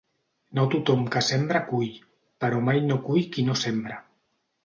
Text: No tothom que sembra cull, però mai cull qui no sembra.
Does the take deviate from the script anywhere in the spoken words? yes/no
yes